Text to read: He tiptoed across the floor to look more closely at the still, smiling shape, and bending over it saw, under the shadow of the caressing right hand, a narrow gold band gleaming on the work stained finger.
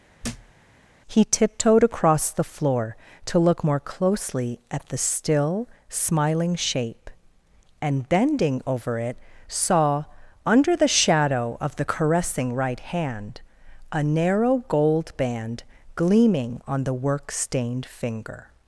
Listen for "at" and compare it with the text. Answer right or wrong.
right